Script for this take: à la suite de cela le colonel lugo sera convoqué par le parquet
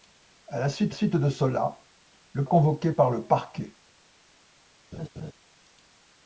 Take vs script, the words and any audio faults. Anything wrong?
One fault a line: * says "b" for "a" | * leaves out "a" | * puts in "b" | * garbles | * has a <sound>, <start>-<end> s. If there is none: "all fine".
* puts in "suite"
* leaves out "colonel lugo sera"
* has a laugh, 4.9-5.3 s